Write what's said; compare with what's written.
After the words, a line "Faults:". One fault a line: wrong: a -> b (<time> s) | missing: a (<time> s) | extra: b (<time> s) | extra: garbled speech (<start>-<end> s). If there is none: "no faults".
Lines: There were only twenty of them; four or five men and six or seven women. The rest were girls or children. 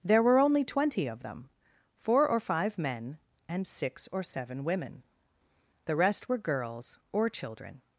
There were only twenty of them; four or five men and six or seven women. The rest were girls or children.
Faults:
no faults